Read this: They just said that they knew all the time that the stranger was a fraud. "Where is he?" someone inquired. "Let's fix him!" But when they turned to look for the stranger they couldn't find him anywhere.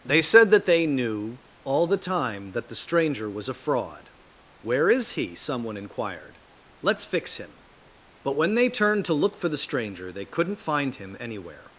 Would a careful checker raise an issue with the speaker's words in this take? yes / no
yes